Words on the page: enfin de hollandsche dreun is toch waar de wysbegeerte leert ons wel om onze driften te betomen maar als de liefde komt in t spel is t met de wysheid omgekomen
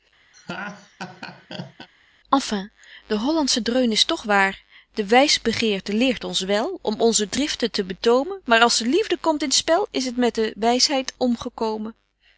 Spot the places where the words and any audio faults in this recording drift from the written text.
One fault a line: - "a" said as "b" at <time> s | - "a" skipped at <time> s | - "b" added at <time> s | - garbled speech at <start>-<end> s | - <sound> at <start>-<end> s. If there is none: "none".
- laugh at 0.3-1.9 s